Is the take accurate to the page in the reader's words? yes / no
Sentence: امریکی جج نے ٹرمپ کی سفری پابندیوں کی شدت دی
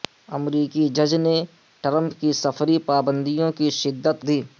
yes